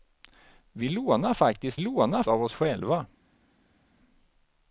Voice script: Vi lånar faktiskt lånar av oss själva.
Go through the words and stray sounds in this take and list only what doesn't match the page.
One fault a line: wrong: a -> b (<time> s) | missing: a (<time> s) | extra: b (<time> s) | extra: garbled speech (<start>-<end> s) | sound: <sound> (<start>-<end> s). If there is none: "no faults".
no faults